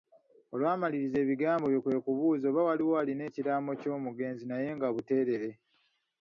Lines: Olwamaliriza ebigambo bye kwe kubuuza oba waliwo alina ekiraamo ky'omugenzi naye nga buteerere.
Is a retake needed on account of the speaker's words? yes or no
no